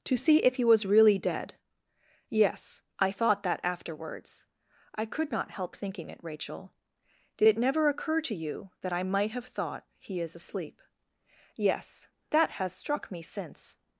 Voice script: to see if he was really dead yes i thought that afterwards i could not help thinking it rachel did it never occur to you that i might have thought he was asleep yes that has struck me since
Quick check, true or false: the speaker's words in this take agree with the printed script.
false